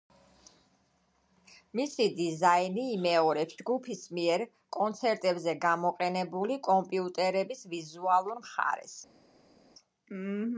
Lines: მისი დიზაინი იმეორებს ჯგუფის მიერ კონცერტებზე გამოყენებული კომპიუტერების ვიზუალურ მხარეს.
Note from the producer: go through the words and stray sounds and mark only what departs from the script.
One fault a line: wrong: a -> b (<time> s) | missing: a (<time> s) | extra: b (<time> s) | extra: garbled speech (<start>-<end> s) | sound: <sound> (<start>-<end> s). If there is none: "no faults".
no faults